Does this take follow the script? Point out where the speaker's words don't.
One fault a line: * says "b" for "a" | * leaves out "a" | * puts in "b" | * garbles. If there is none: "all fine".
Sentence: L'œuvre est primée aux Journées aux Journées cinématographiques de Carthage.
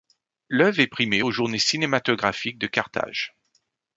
* leaves out "aux Journées"